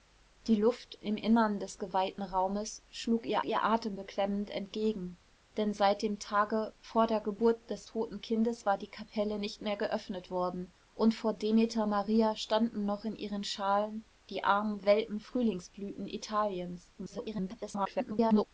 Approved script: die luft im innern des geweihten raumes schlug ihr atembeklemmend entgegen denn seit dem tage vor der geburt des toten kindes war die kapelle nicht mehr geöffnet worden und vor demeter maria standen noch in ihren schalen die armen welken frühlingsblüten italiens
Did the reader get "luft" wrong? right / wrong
right